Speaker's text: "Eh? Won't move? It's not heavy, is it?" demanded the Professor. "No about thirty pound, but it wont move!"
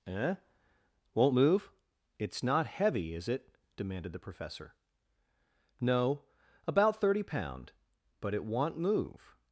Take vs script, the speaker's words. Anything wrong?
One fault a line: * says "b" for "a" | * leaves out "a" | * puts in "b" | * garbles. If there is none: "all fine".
all fine